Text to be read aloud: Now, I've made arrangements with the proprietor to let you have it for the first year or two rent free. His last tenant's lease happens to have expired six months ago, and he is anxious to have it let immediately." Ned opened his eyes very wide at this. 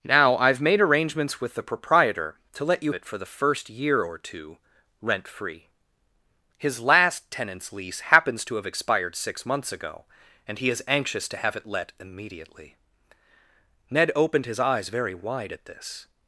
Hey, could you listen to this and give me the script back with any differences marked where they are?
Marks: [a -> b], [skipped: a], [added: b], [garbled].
Now, I've made arrangements with the proprietor to let you [skipped: have] it for the first year or two rent free. His last tenant's lease happens to have expired six months ago, and he is anxious to have it let immediately." Ned opened his eyes very wide at this.